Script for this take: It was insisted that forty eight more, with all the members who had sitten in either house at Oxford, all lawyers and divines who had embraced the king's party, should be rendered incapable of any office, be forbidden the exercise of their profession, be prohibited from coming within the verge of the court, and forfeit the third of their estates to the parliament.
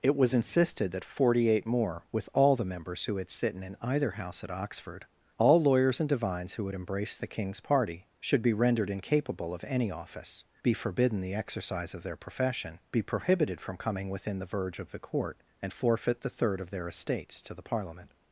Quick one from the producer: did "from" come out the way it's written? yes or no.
yes